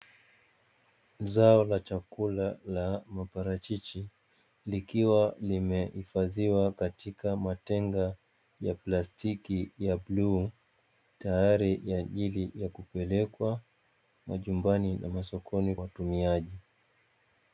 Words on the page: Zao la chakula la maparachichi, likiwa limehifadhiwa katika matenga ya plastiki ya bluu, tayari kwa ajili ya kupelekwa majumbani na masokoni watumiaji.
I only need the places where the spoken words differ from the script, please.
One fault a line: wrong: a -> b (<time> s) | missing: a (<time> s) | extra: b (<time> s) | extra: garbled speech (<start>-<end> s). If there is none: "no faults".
no faults